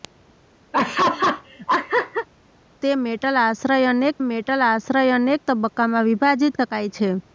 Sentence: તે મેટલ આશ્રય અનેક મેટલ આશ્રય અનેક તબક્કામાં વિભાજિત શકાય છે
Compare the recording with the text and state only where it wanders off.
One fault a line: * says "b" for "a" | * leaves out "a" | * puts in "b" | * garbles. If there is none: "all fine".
all fine